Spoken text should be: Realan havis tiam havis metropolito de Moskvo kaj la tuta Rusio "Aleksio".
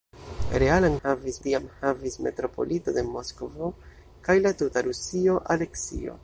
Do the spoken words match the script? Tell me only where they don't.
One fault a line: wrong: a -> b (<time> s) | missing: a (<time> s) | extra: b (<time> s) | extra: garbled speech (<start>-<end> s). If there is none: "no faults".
no faults